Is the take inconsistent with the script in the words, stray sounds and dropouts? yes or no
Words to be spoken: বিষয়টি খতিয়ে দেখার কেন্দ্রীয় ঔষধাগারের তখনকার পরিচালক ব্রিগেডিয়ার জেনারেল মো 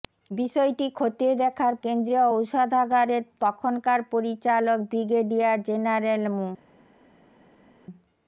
no